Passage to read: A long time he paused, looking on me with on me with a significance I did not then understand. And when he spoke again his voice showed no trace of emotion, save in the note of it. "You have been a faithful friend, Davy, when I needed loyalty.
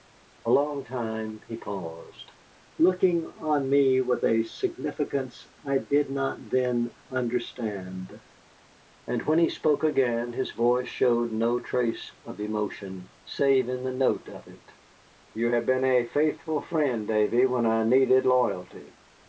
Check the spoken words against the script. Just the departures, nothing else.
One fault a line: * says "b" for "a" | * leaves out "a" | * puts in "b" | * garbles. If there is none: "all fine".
* leaves out "on me with"